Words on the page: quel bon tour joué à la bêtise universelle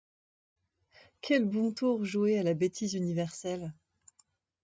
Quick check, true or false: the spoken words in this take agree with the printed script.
true